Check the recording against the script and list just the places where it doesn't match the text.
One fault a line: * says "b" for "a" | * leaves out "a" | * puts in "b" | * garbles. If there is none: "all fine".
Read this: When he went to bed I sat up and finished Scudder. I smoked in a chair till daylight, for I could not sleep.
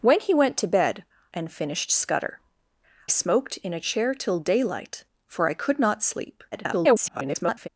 * leaves out "I sat up"
* leaves out "I"
* garbles